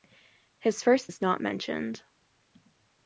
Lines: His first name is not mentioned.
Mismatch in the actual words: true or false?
true